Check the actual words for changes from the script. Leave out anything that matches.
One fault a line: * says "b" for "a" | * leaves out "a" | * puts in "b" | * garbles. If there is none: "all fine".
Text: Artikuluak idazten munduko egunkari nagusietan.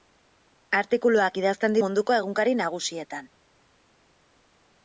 all fine